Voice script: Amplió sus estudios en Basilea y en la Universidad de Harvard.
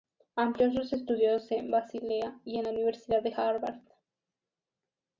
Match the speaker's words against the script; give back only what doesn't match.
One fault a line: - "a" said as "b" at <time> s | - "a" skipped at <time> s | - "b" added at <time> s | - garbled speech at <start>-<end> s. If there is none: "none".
none